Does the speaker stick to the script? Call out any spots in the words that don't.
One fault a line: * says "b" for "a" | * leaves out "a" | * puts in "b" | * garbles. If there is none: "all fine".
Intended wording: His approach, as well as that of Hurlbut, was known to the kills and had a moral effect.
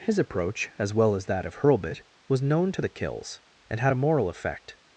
all fine